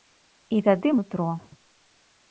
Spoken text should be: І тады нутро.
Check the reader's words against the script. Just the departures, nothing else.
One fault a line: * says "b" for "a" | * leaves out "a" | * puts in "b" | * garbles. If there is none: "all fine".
all fine